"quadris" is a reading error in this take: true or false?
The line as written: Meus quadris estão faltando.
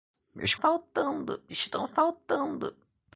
true